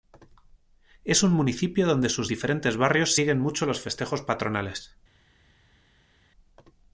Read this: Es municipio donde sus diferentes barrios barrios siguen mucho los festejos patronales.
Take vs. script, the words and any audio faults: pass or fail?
fail